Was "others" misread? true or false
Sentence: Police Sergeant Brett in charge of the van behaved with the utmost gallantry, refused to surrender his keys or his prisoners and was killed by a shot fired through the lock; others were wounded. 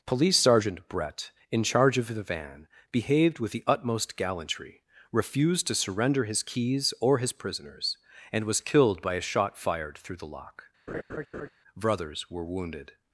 true